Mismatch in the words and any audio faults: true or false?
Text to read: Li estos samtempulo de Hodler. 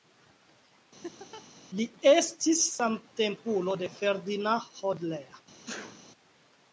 true